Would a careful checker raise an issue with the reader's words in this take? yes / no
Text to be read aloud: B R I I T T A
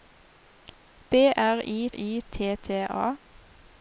no